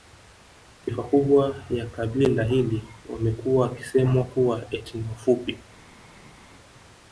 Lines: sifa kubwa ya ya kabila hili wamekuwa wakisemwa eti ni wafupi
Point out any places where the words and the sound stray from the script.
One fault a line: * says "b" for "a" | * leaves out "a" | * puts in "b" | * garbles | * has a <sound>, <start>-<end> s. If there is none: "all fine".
* leaves out "ya"
* puts in "kuwa"